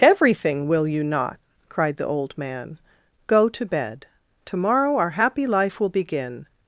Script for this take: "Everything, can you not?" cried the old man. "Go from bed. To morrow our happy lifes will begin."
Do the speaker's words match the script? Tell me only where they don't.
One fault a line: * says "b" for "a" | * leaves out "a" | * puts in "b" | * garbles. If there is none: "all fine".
* says "will" for "can"
* says "to" for "from"
* says "life" for "lifes"